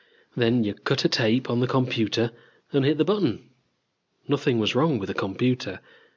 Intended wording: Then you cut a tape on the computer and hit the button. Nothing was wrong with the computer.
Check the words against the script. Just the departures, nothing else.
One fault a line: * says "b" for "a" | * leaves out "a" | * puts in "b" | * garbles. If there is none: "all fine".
all fine